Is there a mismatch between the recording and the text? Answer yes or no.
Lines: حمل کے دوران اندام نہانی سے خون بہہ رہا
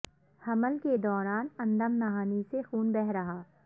no